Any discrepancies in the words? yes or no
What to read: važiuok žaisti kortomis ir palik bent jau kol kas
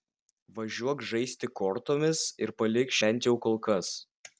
no